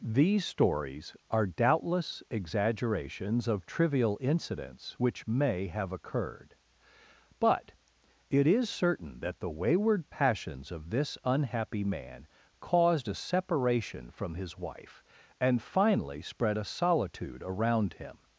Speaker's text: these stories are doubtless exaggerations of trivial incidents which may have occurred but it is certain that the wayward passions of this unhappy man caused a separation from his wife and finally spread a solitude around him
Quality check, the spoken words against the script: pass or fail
pass